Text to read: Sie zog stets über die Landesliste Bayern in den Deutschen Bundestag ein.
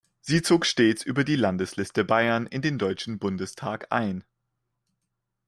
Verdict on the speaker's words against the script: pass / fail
pass